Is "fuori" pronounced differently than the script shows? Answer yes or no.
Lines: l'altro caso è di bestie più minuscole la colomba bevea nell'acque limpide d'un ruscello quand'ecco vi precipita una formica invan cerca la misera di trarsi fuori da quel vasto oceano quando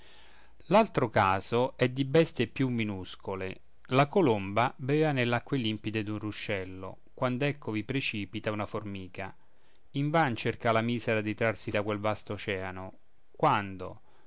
yes